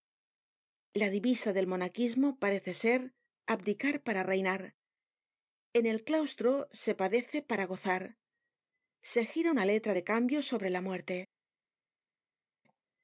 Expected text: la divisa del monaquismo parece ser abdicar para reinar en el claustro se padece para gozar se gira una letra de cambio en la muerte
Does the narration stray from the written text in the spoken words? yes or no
yes